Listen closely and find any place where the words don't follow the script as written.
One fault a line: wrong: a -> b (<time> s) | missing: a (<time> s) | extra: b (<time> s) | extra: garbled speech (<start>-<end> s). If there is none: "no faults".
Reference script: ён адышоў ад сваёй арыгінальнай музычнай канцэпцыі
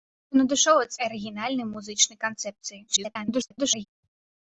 missing: сваёй (0.9 s)
extra: garbled speech (2.9-3.9 s)